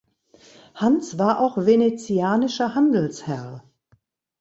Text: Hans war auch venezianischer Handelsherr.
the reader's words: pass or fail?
pass